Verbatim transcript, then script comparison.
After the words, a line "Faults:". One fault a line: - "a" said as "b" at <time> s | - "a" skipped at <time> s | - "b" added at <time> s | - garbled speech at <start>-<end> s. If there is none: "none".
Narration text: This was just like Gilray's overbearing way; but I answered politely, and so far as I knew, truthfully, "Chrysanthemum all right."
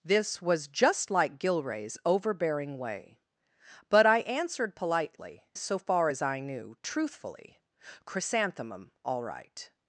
This was just like Gilray's overbearing way; but I answered politely, so far as I knew, truthfully, "Chrysanthemum all right."
Faults:
- "and" skipped at 5.4 s